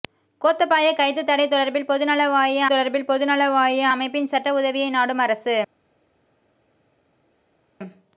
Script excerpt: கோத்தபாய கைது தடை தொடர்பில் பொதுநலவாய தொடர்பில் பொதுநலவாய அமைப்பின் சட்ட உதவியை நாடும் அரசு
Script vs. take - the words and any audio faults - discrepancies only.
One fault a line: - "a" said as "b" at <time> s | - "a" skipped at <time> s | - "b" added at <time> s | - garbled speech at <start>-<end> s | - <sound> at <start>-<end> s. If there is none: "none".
none